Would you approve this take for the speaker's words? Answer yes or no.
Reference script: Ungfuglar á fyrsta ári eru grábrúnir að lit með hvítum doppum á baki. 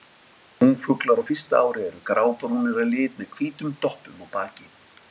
yes